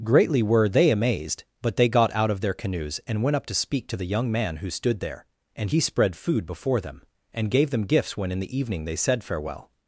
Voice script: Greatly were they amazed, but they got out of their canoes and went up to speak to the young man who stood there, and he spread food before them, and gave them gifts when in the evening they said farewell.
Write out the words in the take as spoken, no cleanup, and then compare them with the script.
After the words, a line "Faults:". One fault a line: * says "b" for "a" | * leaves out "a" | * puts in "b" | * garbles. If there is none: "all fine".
Greatly were they amazed, but they got out of their canoes and went up to speak to the young man who stood there, and he spread food before them, and gave them gifts when in the evening they said farewell.
Faults:
all fine